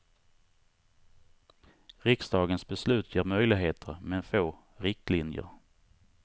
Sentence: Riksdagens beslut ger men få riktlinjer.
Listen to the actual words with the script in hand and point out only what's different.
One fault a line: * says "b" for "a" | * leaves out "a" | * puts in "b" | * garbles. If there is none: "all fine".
* puts in "möjligheter"